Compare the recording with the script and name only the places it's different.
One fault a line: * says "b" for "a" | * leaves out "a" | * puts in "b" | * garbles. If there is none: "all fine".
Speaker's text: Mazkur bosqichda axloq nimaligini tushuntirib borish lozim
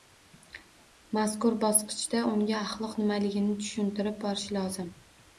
* puts in "unga"